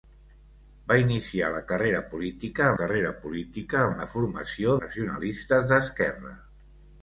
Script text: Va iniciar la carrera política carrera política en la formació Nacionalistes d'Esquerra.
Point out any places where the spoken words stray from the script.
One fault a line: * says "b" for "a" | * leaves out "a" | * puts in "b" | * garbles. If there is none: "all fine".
all fine